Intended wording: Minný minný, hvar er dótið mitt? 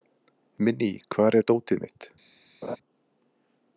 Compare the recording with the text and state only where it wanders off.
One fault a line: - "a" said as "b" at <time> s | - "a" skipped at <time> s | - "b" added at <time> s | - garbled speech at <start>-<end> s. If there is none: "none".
- "minný" skipped at 0.9 s